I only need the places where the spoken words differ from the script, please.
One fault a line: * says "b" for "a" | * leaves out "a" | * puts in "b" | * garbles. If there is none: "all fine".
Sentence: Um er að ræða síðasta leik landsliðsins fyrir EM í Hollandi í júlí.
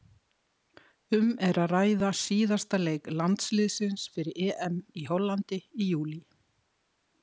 all fine